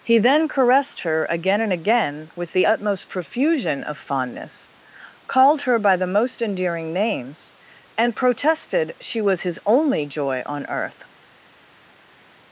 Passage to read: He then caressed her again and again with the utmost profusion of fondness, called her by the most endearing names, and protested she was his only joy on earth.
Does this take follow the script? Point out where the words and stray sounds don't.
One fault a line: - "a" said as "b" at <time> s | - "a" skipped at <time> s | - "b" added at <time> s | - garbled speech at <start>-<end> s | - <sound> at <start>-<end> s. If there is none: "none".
none